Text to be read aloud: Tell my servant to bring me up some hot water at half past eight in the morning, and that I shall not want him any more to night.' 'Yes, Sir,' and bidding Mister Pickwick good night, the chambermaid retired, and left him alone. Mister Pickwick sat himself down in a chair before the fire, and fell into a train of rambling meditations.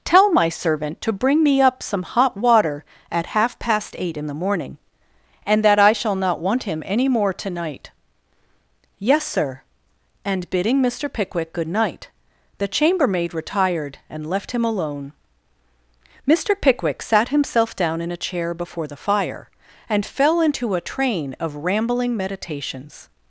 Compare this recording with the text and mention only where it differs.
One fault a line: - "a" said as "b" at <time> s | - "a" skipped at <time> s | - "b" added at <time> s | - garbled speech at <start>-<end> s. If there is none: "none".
none